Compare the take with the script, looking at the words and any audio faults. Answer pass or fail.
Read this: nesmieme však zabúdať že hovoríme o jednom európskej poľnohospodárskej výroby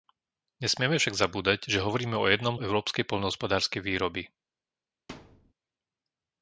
fail